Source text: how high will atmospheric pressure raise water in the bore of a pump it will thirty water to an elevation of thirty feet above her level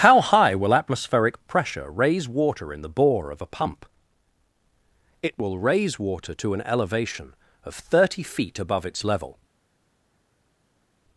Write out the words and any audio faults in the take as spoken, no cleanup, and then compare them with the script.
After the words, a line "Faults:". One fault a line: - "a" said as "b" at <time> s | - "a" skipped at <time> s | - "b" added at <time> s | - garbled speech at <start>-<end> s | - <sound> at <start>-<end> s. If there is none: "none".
how high will atmospheric pressure raise water in the bore of a pump it will raise water to an elevation of thirty feet above its level
Faults:
- "thirty" said as "raise" at 5.6 s
- "her" said as "its" at 8.8 s